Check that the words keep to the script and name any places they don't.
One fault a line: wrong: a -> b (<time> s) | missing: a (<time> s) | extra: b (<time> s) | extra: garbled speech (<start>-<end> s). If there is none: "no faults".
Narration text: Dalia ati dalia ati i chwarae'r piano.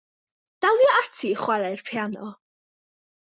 missing: dalia ati (1.3 s)